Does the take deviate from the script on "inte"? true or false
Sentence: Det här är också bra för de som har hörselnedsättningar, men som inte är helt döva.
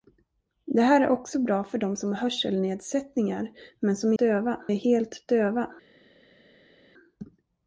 true